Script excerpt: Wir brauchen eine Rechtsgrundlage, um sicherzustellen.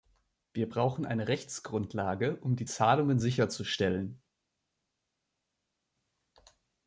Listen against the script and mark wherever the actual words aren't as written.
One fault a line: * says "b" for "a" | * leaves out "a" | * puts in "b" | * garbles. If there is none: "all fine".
* puts in "die Zahlungen"